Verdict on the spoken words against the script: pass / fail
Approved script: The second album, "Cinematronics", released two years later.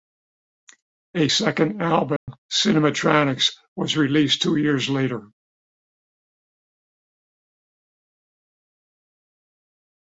fail